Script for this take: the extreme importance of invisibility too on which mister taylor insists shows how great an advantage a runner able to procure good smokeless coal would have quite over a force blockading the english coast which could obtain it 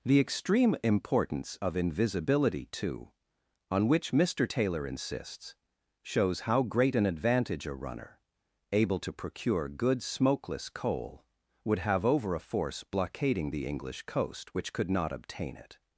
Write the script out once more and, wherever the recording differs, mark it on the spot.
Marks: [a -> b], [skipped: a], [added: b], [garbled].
the extreme importance of invisibility too on which mister taylor insists shows how great an advantage a runner able to procure good smokeless coal would have [skipped: quite] over a force blockading the english coast which could [added: not] obtain it